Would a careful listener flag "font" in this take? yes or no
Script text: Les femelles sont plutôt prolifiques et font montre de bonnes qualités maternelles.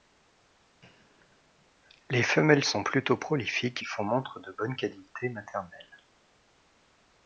no